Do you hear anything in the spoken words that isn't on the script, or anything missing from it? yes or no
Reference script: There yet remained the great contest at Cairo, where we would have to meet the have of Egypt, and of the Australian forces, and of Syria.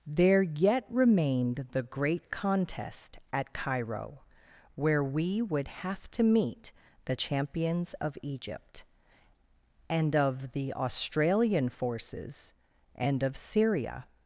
yes